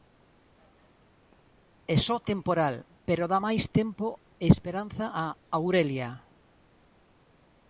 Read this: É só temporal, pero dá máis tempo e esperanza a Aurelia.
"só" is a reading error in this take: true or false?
false